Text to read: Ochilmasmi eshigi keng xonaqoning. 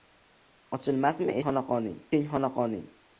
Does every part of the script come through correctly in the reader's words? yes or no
no